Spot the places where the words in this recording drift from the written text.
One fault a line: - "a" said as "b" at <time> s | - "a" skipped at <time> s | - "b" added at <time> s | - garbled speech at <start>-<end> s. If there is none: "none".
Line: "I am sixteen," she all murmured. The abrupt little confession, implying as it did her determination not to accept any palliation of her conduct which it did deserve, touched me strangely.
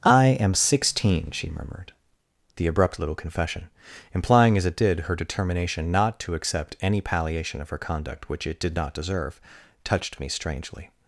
- "all" skipped at 1.5 s
- "not" added at 8.7 s